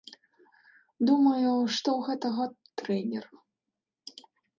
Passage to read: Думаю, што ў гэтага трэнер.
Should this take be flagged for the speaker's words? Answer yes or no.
no